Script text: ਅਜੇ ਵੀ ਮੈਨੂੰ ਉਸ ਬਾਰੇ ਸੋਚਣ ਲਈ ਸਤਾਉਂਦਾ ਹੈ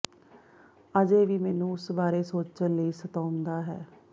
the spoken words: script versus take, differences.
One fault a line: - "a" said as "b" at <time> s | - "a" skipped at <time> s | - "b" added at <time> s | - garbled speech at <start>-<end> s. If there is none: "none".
none